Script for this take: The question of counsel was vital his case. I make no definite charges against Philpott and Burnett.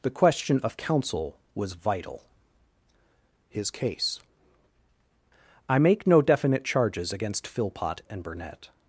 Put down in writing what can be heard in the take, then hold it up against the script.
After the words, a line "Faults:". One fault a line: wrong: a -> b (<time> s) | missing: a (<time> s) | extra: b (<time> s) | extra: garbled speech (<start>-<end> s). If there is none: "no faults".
The question of counsel was vital his case. I make no definite charges against Philpott and Burnett.
Faults:
no faults